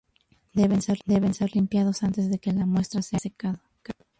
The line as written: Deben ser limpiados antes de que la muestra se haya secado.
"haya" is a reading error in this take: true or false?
true